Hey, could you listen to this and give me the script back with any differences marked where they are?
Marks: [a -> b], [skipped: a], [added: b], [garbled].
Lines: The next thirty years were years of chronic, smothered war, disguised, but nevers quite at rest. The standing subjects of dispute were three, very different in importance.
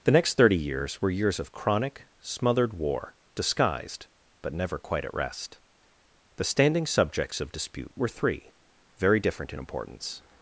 The next thirty years were years of chronic, smothered war, disguised, but [nevers -> never] quite at rest. The standing subjects of dispute were three, very different in importance.